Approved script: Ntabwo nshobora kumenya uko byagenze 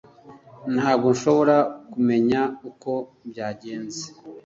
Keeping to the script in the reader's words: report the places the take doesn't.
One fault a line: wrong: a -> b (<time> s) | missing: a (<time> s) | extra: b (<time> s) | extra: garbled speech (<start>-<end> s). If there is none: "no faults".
no faults